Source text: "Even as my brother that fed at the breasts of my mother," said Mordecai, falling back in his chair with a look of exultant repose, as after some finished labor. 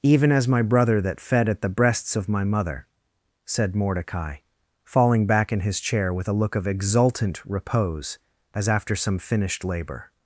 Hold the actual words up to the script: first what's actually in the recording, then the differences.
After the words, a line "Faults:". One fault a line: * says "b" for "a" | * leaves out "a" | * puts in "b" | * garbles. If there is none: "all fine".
"Even as my brother that fed at the breasts of my mother," said Mordecai, falling back in his chair with a look of exultant repose, as after some finished labor.
Faults:
all fine